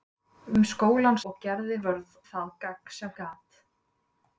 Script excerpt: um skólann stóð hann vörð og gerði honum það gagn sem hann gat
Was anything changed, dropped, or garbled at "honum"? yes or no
yes